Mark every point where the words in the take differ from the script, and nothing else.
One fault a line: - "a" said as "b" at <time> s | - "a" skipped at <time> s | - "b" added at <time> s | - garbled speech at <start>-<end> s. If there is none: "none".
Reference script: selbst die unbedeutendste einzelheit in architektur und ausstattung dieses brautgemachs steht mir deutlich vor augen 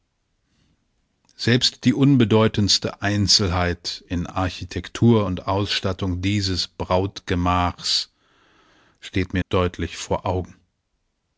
none